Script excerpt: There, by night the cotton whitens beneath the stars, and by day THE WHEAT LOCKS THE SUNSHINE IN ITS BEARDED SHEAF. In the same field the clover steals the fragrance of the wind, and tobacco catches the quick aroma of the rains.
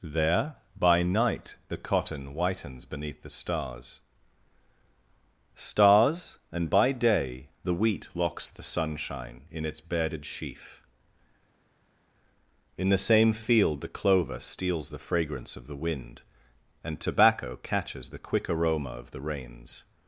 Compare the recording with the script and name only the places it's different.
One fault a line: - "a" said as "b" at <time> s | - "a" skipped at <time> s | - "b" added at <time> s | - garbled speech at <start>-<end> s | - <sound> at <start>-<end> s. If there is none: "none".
- "stars" added at 5.5 s